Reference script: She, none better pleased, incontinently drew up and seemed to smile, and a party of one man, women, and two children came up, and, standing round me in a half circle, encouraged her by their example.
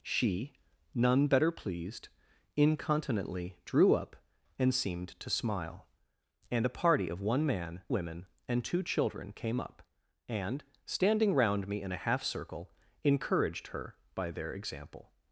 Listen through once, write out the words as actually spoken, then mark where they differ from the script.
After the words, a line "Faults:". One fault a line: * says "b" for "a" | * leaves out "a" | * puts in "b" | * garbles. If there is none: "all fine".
She, none better pleased, incontinently drew up and seemed to smile, and a party of one man, women, and two children came up, and, standing round me in a half circle, encouraged her by their example.
Faults:
all fine